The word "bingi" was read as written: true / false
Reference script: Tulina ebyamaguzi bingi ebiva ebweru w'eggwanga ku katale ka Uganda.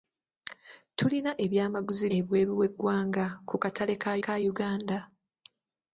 false